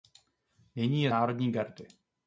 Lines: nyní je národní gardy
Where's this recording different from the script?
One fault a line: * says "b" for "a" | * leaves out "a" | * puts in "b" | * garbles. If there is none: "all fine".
all fine